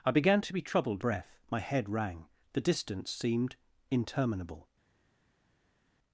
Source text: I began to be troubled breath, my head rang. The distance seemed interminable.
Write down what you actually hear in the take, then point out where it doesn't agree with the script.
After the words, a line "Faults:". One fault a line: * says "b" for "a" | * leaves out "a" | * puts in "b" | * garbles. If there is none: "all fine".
I began to be troubled breath, my head rang. The distance seemed interminable.
Faults:
all fine